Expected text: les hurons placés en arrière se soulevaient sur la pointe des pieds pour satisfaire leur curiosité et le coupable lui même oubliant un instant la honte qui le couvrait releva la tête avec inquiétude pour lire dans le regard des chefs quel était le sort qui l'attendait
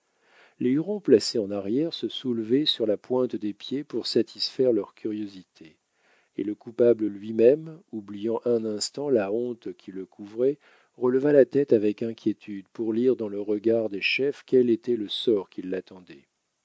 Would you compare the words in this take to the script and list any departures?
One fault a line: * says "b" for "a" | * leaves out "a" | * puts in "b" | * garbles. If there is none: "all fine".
all fine